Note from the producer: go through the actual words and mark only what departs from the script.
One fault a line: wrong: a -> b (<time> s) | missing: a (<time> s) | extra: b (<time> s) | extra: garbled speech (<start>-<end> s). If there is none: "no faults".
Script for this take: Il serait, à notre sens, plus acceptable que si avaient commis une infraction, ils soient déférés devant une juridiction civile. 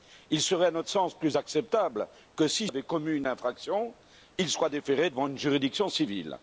no faults